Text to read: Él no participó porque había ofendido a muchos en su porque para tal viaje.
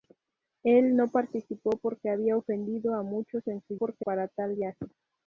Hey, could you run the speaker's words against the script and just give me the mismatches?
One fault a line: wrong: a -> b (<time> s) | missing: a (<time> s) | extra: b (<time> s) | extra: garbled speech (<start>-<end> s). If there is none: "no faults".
no faults